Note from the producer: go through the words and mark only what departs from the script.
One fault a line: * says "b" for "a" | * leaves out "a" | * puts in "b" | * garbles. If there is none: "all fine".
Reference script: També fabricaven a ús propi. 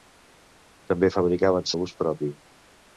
all fine